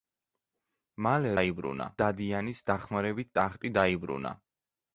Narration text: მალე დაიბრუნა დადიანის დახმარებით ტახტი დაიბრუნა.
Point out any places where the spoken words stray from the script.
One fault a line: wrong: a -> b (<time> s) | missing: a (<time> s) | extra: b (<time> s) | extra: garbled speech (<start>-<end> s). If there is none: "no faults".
no faults